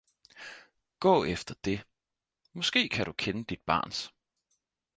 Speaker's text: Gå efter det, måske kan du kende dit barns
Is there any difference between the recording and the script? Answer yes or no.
no